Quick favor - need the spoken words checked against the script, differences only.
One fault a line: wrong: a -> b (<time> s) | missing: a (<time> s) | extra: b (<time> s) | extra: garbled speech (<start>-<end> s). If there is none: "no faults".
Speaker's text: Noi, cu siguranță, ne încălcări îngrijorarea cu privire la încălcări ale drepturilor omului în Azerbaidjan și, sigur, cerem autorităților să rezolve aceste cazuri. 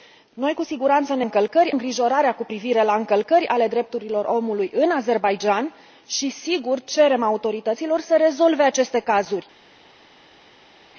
no faults